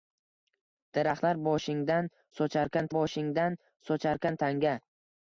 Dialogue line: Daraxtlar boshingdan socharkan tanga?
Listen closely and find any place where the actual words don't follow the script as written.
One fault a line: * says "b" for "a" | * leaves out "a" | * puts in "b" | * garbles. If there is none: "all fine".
* puts in "boshingdan socharkan"